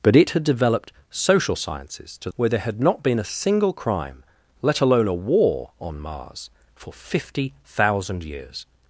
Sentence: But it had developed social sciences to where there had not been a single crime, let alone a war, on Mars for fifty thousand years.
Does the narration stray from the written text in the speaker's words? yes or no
no